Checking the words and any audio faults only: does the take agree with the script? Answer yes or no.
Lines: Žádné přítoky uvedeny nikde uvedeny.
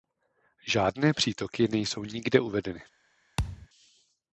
no